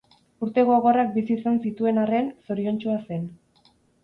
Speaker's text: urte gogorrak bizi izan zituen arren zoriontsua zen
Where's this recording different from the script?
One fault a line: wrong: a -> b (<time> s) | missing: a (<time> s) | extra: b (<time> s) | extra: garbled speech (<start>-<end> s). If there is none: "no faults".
no faults